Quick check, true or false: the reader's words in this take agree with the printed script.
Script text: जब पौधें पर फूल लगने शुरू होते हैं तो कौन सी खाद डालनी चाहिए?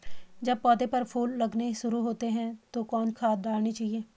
false